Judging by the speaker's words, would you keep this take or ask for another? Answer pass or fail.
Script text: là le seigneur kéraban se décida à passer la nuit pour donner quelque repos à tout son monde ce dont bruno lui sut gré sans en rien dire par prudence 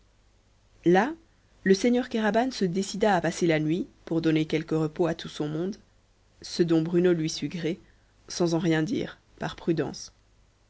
pass